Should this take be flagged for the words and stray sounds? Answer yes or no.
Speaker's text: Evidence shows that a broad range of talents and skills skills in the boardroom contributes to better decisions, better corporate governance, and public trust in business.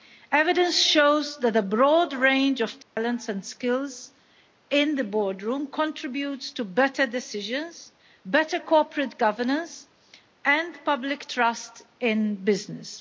yes